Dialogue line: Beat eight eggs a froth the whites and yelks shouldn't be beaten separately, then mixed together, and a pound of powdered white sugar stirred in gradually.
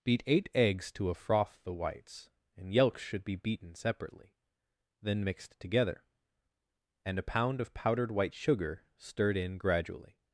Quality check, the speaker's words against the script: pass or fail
fail